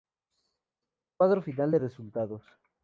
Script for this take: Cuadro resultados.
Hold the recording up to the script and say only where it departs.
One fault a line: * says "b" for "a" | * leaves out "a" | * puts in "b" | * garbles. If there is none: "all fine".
* puts in "final de"